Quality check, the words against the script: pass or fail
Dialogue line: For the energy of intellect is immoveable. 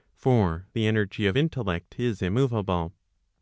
pass